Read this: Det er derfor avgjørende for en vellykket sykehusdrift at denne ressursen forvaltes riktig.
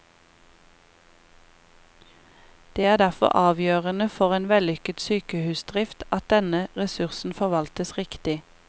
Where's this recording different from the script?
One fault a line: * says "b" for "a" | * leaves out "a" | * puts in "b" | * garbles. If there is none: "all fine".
all fine